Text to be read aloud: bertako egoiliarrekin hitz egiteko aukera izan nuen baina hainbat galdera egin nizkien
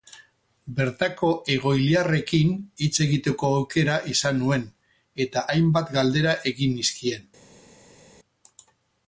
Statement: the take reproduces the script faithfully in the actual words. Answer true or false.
false